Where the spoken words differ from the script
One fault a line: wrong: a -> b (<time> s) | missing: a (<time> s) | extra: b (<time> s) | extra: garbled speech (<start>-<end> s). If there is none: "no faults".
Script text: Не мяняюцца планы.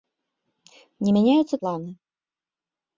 no faults